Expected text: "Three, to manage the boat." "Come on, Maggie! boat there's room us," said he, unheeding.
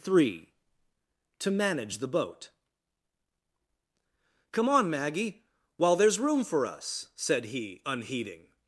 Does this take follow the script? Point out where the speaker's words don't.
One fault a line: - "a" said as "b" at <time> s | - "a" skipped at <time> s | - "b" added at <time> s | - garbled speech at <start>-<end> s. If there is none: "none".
- "boat" said as "while" at 5.8 s
- "for" added at 6.4 s